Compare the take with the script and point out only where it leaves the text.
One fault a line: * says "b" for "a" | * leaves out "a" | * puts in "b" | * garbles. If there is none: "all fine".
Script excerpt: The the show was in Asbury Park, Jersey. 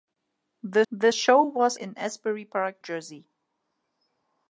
all fine